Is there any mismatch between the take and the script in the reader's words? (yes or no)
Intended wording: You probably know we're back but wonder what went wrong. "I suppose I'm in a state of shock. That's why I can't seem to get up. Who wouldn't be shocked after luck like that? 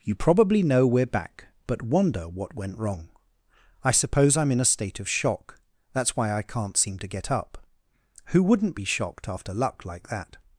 no